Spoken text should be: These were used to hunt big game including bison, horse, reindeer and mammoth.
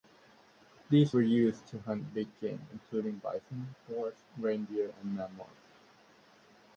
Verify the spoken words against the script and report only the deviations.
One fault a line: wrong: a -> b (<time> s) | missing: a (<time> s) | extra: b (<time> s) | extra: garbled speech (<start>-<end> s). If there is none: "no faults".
no faults